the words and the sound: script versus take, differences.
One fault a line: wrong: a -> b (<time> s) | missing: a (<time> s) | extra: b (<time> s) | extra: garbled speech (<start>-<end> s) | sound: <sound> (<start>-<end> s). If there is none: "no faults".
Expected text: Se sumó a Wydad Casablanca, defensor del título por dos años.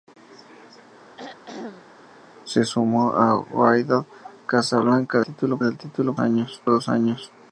sound: throat clearing (1.2-2.0 s)
wrong: defensor -> título (5.2 s)
wrong: por -> años (6.2 s)